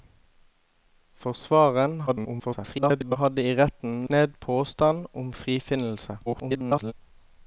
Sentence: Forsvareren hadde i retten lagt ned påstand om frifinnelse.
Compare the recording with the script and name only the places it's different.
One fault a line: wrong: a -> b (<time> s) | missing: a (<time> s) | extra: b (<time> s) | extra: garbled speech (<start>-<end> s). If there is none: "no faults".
extra: garbled speech (2.1-3.2 s)
missing: lagt (4.1 s)
extra: garbled speech (6.3-6.9 s)